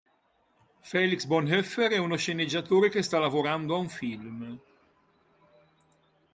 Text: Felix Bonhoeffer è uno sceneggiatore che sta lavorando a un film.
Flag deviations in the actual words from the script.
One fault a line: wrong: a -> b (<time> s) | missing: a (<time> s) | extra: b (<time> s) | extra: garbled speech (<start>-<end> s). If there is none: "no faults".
no faults